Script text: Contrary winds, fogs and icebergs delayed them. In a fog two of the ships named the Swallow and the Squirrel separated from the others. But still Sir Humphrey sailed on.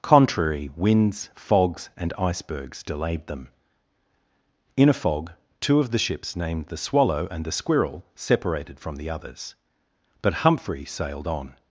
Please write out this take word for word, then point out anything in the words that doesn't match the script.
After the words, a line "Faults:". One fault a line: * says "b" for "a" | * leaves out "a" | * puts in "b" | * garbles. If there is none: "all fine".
Contrary winds, fogs and icebergs delayed them. In a fog two of the ships named the Swallow and the Squirrel separated from the others. But Humphrey sailed on.
Faults:
* leaves out "still Sir"